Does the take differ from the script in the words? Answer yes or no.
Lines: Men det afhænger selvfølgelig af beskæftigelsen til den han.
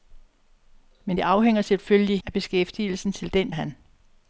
no